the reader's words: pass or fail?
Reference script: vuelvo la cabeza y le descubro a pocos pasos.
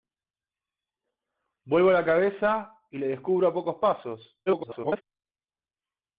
fail